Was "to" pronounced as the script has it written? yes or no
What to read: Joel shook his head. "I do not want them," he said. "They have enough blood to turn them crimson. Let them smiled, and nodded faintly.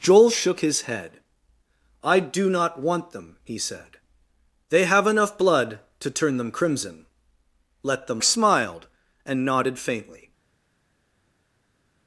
yes